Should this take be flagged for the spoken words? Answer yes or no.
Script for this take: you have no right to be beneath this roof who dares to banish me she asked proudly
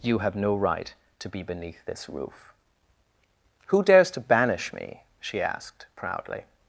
no